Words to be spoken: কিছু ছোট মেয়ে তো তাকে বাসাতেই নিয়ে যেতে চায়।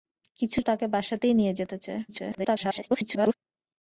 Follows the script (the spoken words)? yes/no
no